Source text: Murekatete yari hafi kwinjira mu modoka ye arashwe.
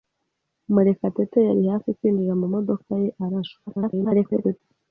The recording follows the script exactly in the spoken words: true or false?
false